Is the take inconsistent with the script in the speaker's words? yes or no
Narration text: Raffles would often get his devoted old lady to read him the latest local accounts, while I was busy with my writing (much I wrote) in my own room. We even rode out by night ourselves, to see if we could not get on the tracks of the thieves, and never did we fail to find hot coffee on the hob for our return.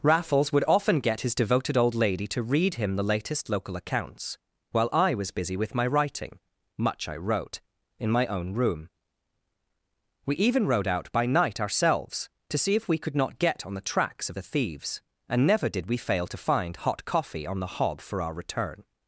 no